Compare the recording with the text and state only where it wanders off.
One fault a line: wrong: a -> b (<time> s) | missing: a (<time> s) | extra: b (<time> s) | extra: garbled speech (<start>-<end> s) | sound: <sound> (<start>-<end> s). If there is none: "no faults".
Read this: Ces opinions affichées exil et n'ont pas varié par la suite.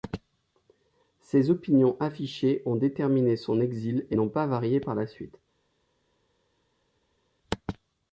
extra: ont déterminé son (2.6 s)